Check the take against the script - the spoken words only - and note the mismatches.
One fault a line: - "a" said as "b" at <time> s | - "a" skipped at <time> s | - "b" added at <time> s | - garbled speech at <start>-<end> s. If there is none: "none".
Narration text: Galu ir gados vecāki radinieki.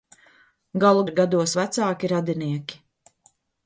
none